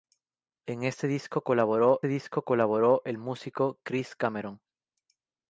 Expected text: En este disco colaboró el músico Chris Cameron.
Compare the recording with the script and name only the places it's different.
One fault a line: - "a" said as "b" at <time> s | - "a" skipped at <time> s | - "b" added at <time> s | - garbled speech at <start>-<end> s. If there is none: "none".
- "disco colaboró" added at 2.1 s